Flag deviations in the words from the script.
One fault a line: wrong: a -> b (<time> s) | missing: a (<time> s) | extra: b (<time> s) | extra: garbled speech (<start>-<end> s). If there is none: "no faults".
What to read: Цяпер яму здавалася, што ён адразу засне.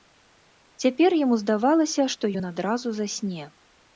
no faults